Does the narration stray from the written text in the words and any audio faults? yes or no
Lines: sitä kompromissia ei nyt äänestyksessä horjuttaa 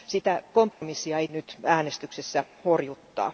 yes